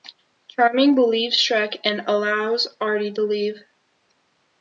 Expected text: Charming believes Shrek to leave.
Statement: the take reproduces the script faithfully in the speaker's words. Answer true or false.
false